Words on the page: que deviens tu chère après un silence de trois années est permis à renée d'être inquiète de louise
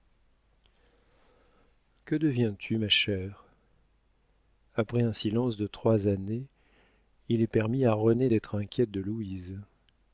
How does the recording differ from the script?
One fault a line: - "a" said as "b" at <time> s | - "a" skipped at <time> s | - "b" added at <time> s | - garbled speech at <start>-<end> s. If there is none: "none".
- "ma" added at 2.8 s
- "il" added at 7.3 s